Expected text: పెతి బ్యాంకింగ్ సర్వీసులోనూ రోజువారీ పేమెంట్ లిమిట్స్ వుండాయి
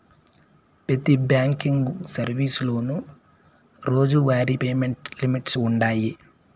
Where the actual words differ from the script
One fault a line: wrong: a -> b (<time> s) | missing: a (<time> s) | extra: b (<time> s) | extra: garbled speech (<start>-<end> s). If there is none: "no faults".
no faults